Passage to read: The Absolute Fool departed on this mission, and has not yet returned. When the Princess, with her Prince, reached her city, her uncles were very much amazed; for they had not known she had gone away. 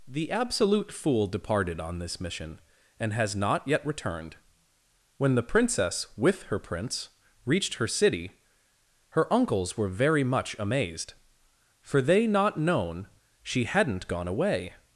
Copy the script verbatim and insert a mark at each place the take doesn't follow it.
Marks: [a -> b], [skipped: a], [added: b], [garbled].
The Absolute Fool departed on this mission, and has not yet returned. When the Princess, with her Prince, reached her city, her uncles were very much amazed; for they [skipped: had] not known she [had -> hadn't] gone away.